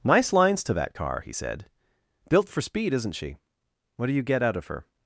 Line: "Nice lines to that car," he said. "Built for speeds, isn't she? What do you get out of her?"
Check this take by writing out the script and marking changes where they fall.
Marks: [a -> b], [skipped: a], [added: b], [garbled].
"Nice lines to that car," he said. "Built for [speeds, -> speed] isn't she? What do you get out of her?"